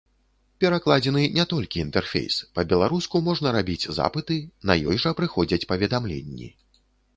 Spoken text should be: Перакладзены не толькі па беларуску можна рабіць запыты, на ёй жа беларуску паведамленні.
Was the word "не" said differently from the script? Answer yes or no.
no